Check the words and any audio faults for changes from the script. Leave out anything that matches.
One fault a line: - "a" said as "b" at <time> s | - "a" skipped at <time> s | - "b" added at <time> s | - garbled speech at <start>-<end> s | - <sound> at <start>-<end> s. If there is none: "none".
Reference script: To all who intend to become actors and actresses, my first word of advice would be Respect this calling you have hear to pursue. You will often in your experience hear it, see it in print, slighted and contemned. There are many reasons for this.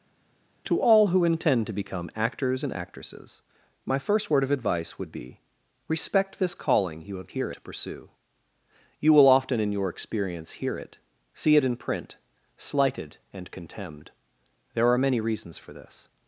none